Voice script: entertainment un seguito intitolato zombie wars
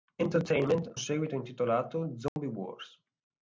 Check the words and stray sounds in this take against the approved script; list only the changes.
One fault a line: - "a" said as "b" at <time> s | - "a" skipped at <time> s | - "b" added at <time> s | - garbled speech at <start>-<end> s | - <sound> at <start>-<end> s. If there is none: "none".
- "un" skipped at 1.0 s
- dropout at 2.3-2.4 s